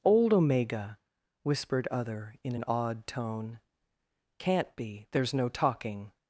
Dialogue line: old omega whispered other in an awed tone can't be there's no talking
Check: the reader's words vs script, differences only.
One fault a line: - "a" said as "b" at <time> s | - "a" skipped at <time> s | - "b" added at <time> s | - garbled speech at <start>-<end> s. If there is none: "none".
none